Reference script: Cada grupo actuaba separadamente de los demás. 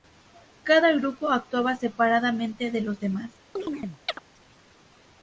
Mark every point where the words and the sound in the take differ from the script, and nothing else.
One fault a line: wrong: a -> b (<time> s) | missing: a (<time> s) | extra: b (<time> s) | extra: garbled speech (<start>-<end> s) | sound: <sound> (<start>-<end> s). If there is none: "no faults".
sound: chirp (3.6-4.2 s)